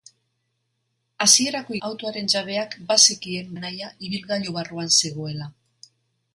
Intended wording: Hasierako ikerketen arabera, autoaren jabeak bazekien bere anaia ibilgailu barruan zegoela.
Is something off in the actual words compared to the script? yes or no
yes